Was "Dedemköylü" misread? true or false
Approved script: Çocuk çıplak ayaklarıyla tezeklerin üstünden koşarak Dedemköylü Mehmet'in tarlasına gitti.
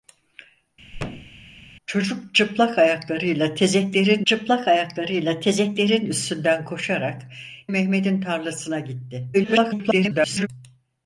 true